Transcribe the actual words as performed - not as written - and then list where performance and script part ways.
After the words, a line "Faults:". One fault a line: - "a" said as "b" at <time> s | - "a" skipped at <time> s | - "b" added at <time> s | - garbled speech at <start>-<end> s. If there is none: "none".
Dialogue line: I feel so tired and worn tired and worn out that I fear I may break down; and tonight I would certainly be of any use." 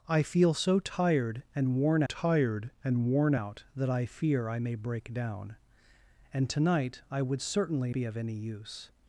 I feel so tired and worn tired and worn out that I fear I may break down; and tonight I would certainly be of any use."
Faults:
none